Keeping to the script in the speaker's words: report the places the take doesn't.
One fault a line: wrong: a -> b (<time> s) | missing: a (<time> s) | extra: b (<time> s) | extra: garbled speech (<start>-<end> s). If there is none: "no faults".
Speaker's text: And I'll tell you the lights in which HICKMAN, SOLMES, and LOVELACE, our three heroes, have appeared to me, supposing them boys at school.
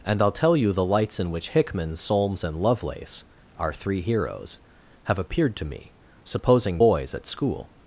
missing: them (6.8 s)